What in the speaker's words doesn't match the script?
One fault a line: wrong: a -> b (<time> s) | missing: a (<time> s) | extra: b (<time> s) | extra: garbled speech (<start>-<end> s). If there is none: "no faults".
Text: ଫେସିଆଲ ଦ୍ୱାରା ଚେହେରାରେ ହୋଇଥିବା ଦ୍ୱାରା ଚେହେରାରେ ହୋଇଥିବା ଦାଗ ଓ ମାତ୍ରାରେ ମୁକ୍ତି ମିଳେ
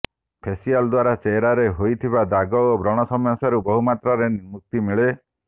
wrong: ଦ୍ୱାରା ଚେହେରାରେ ହୋଇଥିବା ଦାଗ ଓ -> ଦାଗ ଓ ବ୍ରଣ ସମସ୍ୟାରୁ ବହୁ (2.3 s)